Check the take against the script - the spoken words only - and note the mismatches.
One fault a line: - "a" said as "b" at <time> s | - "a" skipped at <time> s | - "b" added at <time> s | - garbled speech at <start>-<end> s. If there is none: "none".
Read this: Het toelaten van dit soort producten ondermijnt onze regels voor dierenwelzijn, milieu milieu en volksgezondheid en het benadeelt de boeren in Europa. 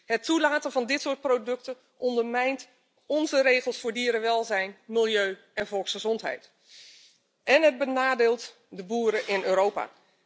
- "milieu" skipped at 5.4 s